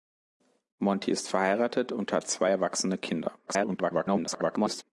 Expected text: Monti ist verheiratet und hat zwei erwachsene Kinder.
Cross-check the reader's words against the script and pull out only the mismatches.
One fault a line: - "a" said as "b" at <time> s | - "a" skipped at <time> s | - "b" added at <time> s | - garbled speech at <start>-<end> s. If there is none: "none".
- garbled speech at 3.5-4.8 s